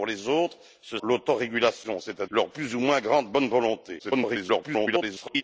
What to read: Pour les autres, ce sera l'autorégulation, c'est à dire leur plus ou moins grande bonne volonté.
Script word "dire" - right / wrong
wrong